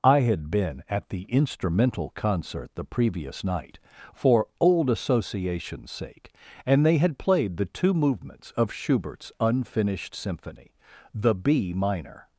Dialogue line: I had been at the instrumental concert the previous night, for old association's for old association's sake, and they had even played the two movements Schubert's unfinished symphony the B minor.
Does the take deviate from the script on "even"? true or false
true